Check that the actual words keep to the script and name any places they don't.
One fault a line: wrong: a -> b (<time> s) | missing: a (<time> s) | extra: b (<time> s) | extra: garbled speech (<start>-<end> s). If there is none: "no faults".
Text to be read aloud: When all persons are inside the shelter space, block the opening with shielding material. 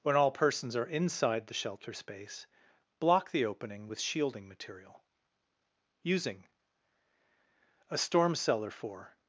extra: USING A STORM CELLAR FOR (6.0 s)